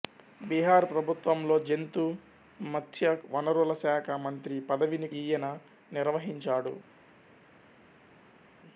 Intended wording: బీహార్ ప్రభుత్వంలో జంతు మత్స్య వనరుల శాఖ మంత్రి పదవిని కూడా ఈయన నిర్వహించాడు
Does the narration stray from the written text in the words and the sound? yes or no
yes